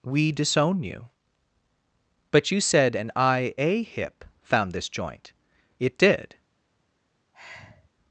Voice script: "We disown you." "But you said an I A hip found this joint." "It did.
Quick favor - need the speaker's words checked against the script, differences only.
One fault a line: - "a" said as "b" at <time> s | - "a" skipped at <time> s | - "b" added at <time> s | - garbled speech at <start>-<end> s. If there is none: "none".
none